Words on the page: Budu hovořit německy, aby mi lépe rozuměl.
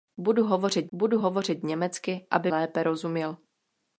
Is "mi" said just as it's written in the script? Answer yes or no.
no